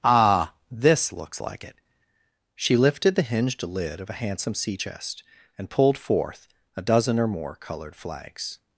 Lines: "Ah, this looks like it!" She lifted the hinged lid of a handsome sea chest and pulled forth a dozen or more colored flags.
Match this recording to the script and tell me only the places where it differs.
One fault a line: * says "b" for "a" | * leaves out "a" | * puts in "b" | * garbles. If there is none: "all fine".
all fine